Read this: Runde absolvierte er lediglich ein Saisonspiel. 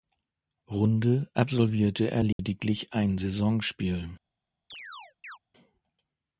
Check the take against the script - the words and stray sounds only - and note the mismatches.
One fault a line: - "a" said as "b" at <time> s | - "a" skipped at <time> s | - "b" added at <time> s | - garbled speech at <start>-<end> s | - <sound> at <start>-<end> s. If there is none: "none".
- dropout at 2.3-2.4 s
- chirp at 4.7-5.4 s